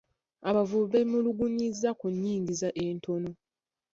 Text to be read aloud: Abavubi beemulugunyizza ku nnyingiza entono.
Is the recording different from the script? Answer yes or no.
no